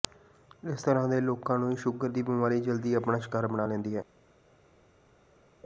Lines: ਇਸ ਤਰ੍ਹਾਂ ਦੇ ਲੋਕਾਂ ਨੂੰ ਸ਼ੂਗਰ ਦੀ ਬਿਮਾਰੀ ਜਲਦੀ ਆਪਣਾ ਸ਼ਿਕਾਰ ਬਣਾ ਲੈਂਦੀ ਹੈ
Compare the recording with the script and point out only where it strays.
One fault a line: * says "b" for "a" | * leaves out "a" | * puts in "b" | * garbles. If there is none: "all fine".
all fine